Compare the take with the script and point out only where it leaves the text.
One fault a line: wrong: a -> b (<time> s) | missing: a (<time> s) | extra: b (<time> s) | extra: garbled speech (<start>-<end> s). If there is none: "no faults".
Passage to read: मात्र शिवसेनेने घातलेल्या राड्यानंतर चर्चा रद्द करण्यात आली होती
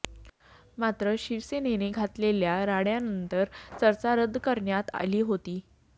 no faults